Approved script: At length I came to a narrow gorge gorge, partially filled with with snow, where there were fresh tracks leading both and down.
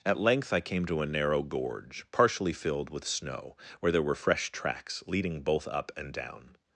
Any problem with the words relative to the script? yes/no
yes